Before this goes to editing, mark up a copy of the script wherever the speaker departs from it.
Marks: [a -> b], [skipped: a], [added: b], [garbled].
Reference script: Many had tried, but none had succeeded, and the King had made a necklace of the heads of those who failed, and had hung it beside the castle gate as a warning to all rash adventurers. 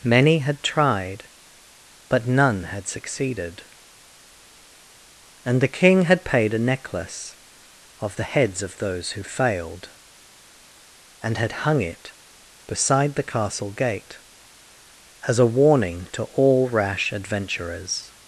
Many had tried, but none had succeeded, and the King had [made -> paid] a necklace of the heads of those who failed, and had hung it beside the castle gate as a warning to all rash adventurers.